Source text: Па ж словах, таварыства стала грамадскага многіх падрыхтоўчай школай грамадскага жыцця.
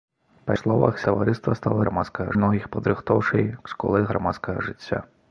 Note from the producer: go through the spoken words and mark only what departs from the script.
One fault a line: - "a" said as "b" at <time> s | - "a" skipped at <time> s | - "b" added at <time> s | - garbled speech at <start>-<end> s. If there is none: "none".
none